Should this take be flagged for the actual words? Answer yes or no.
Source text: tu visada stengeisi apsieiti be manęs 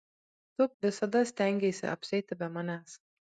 no